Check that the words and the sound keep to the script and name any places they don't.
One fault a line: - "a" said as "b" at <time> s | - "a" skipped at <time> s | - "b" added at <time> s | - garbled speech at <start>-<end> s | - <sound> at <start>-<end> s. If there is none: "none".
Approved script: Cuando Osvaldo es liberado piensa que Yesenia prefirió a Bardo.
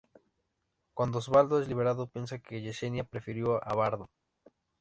none